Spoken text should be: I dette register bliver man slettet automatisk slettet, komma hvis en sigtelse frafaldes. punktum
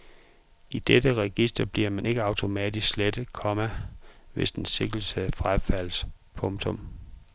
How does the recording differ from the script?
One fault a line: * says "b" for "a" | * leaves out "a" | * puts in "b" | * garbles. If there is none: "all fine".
* says "ikke" for "slettet"